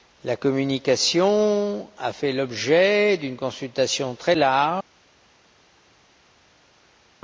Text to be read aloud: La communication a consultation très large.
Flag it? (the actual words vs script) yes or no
yes